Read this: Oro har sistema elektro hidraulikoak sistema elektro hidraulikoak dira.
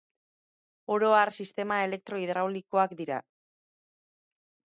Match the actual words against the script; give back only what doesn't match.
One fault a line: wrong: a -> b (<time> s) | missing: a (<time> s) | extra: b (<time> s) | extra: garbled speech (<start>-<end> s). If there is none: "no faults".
missing: sistema elektro hidraulikoak (3.0 s)